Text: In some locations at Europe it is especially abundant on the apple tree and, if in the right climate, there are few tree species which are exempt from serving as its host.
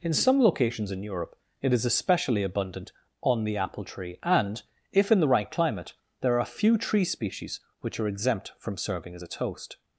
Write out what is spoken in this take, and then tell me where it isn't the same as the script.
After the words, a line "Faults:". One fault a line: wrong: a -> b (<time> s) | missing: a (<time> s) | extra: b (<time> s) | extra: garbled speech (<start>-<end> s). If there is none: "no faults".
In some locations in Europe it is especially abundant on the apple tree and, if in the right climate, there are few tree species which are exempt from serving as its host.
Faults:
wrong: at -> in (0.9 s)